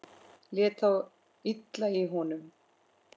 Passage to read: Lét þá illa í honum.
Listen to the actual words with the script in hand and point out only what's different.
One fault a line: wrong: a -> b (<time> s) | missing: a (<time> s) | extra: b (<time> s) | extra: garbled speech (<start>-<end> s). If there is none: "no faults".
no faults